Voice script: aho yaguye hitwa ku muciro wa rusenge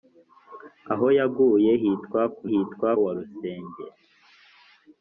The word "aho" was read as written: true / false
true